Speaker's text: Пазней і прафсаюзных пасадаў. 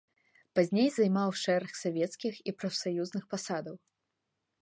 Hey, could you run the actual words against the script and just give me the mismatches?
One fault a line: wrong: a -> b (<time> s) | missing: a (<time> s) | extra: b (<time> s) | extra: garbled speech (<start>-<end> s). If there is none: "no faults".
extra: займаў шэраг савецкіх (0.9 s)